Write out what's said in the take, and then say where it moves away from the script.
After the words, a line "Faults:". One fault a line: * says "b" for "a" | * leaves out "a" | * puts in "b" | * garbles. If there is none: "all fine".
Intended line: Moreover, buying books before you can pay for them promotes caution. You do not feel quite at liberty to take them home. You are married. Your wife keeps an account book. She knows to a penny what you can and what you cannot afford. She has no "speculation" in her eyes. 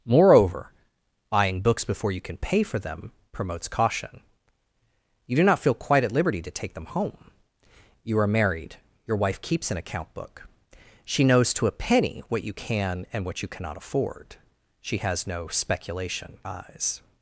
Moreover, buying books before you can pay for them promotes caution. You do not feel quite at liberty to take them home. You are married. Your wife keeps an account book. She knows to a penny what you can and what you cannot afford. She has no "speculation" eyes.
Faults:
* leaves out "in her"